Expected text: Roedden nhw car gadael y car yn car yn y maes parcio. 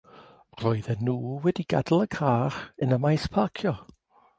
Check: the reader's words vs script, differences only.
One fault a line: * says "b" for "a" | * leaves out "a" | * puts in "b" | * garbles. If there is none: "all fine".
* says "wedi" for "car"
* leaves out "car yn"